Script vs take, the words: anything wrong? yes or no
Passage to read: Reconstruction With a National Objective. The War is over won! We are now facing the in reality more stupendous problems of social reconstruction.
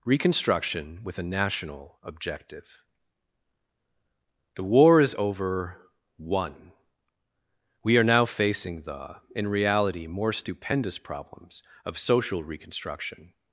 no